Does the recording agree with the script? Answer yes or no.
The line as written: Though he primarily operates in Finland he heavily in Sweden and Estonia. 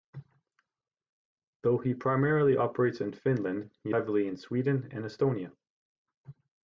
yes